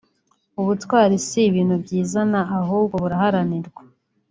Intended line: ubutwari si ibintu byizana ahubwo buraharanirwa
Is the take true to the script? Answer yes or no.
yes